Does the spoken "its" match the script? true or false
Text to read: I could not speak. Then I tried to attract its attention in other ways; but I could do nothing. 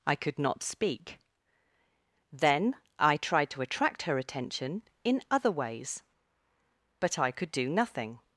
false